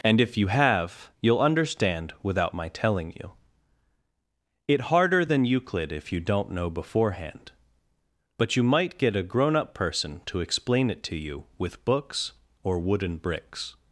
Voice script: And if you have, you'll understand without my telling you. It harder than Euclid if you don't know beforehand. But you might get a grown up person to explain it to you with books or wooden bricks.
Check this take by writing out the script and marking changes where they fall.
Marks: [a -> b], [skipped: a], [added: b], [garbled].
And if you have, you'll understand without my telling you. It harder than Euclid if you don't know beforehand. But you might get a grown up person to explain it to you with books or wooden bricks.